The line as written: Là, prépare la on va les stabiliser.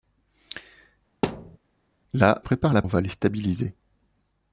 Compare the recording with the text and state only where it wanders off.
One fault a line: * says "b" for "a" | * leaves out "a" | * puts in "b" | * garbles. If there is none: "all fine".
all fine